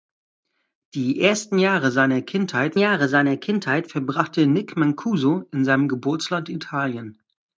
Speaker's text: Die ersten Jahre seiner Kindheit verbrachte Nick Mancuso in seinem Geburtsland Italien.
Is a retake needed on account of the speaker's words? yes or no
yes